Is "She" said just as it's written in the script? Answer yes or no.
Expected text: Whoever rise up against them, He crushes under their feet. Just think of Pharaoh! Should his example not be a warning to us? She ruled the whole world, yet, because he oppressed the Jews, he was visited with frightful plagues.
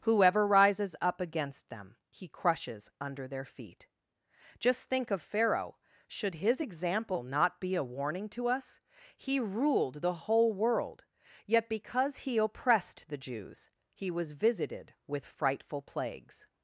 no